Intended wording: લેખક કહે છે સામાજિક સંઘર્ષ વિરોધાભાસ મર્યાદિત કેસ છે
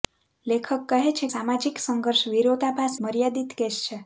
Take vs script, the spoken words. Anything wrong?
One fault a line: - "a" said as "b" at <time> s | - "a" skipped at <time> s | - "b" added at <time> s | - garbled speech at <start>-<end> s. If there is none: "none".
none